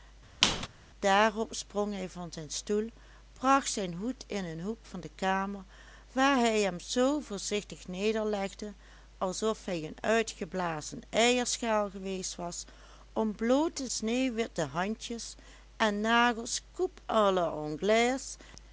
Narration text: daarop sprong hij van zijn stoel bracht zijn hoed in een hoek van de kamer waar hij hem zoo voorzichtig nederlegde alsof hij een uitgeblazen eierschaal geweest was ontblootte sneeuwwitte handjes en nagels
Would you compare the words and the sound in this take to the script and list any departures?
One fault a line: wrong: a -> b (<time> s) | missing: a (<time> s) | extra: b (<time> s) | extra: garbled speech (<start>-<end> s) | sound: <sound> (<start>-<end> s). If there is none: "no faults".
sound: squeak (0.4-0.7 s)